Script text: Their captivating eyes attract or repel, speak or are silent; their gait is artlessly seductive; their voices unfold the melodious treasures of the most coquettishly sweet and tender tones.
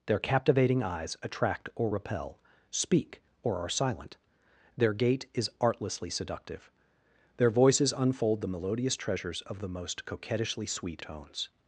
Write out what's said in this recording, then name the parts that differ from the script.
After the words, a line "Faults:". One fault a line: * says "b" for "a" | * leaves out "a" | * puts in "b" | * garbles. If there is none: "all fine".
Their captivating eyes attract or repel, speak or are silent; their gait is artlessly seductive; their voices unfold the melodious treasures of the most coquettishly sweet tones.
Faults:
* leaves out "and tender"